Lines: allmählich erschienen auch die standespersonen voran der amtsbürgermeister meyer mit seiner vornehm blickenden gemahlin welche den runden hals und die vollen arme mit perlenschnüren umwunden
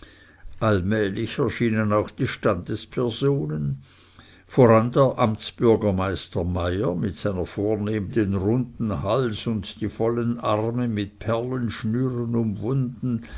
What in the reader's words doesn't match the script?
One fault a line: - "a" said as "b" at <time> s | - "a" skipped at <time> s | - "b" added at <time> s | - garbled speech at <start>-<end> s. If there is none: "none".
- "blickenden gemahlin welche" skipped at 8.1 s